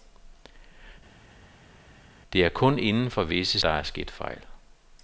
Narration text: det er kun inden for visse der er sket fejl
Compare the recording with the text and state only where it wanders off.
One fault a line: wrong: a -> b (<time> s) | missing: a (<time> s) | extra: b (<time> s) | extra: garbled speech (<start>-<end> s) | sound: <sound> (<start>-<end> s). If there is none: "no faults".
no faults